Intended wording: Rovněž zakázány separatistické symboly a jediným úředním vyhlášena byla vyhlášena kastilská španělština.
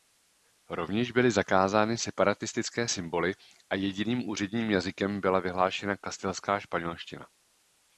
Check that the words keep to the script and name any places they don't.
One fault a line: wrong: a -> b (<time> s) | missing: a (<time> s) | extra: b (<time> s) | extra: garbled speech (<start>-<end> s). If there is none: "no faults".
extra: byly (1.1 s)
wrong: vyhlášena -> jazykem (4.7 s)